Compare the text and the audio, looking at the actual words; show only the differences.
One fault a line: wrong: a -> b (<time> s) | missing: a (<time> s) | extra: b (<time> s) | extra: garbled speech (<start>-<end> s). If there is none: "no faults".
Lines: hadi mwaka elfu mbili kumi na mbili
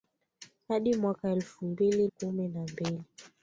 no faults